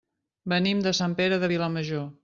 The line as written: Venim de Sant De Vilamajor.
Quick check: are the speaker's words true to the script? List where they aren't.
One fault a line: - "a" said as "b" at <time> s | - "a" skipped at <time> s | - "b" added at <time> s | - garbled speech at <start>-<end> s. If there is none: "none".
- "Pere" added at 1.2 s